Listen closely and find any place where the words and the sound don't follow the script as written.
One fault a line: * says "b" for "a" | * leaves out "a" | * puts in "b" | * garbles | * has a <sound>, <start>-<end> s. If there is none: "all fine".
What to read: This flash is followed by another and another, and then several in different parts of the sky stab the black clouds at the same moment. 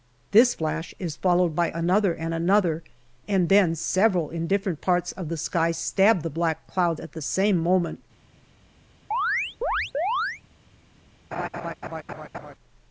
* has a chirp, 9.1-10.4 s
* has a laugh, 11.3-12.5 s